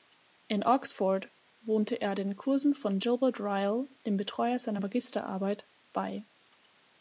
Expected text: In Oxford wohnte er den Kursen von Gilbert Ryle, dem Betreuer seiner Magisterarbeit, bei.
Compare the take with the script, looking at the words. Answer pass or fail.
pass